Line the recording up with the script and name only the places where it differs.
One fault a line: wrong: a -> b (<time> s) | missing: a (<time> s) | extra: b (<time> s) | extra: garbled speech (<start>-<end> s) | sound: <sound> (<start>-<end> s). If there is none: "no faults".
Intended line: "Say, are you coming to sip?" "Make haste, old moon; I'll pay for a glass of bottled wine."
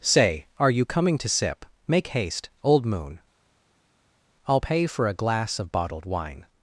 no faults